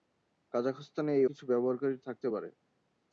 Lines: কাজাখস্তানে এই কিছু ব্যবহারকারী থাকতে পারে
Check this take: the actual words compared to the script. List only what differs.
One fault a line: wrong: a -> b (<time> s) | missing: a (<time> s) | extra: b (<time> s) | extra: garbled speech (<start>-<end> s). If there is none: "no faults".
no faults